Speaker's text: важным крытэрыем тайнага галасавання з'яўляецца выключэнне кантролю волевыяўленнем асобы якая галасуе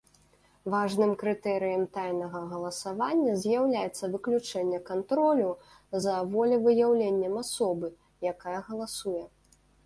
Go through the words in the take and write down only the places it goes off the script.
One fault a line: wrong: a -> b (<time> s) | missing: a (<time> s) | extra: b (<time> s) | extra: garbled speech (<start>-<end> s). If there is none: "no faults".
extra: за (6.0 s)